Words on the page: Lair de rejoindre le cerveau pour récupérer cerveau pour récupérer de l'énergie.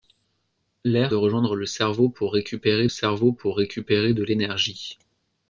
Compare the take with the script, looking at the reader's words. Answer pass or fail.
pass